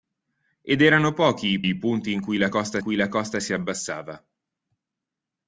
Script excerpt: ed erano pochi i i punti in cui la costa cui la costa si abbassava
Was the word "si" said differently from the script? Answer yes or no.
no